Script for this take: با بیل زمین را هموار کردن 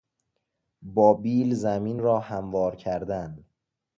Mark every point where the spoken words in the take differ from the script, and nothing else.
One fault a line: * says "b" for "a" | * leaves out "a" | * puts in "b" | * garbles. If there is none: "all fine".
all fine